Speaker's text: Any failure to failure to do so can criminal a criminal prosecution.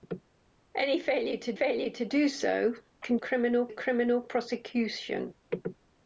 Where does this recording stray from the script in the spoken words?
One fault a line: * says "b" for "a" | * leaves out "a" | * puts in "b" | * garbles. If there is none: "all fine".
all fine